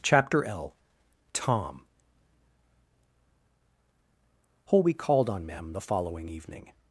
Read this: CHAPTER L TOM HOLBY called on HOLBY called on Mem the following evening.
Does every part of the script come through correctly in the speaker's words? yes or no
no